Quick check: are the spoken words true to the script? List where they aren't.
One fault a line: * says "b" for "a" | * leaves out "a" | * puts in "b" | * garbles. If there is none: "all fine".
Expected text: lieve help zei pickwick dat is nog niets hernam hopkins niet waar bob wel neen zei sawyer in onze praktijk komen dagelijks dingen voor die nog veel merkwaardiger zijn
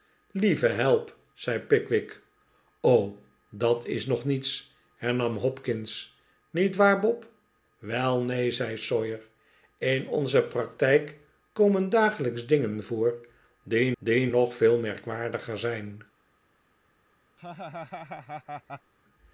* puts in "die"